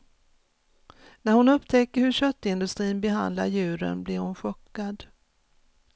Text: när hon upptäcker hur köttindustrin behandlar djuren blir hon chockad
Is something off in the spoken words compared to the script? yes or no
no